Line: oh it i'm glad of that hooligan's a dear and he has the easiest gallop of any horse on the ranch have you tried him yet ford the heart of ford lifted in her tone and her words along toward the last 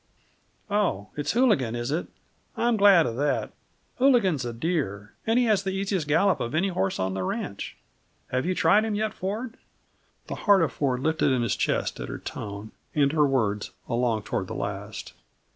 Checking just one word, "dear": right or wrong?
right